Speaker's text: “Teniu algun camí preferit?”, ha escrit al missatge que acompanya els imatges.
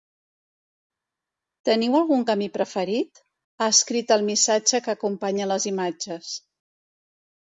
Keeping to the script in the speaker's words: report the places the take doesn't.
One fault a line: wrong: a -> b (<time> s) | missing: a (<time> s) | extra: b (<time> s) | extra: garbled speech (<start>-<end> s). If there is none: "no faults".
wrong: els -> les (5.5 s)